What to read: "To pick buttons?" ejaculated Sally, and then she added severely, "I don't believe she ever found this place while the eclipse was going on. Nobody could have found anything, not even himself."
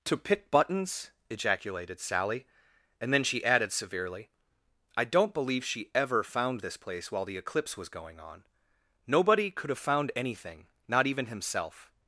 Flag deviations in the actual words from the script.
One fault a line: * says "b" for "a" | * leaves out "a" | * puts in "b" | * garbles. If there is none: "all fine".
all fine